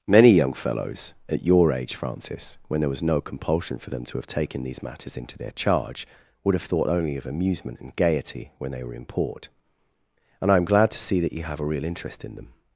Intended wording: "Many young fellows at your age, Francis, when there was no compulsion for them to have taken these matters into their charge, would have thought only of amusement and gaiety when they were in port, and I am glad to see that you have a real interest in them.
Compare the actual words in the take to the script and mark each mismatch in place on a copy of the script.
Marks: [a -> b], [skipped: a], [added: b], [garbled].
"Many young fellows at your age, Francis, when there was no compulsion for them to have taken these matters into their charge, would have thought only of amusement and gaiety when they were in port, and I am glad to see that you have a real interest in them.